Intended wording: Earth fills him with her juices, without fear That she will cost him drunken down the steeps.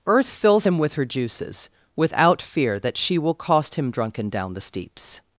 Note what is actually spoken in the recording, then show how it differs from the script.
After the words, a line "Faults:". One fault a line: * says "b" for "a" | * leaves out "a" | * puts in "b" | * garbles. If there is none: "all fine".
Earth fills him with her juices, without fear That she will cost him drunken down the steeps.
Faults:
all fine